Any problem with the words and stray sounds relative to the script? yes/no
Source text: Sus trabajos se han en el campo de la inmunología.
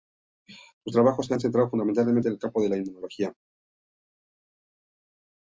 yes